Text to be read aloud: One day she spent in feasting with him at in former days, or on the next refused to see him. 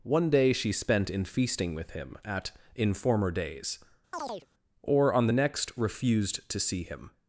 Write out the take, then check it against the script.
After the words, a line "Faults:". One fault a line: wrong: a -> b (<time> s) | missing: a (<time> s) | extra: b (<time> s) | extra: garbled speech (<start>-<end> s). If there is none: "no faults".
One day she spent in feasting with him at in former days, or on the next refused to see him.
Faults:
no faults